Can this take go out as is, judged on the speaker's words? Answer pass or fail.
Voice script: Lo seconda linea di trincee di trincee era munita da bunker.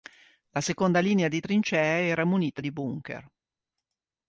fail